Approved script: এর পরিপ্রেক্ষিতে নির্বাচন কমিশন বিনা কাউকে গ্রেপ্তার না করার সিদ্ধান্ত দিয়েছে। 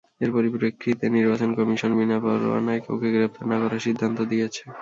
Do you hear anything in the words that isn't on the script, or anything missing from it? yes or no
yes